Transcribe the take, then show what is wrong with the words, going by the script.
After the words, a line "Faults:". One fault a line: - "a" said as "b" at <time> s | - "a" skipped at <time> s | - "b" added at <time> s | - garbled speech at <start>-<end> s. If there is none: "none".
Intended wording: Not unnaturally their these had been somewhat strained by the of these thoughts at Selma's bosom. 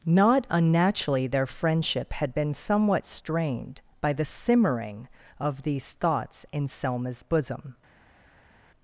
Not unnaturally their friendship had been somewhat strained by the simmering of these thoughts in Selma's bosom.
Faults:
- "these" said as "friendship" at 1.4 s
- "simmering" added at 4.3 s
- "at" said as "in" at 6.5 s